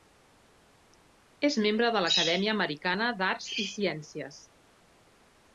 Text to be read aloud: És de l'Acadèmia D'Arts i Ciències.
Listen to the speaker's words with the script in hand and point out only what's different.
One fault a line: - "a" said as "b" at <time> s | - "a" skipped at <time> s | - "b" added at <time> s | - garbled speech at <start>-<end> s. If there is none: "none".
- "membre" added at 1.7 s
- "Americana" added at 2.6 s